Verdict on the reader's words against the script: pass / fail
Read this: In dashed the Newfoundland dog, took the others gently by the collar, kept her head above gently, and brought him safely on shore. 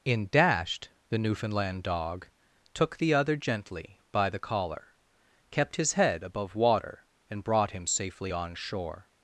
fail